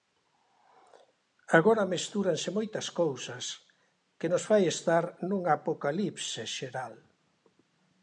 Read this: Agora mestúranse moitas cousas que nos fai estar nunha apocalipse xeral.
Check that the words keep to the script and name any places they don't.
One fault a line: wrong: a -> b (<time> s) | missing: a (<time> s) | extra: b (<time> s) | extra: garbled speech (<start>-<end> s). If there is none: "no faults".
no faults